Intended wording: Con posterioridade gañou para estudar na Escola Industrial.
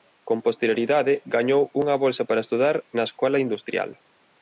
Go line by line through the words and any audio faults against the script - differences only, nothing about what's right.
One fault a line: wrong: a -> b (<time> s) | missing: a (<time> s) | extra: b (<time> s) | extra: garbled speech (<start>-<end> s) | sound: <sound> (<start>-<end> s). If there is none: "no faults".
extra: unha bolsa (1.8 s)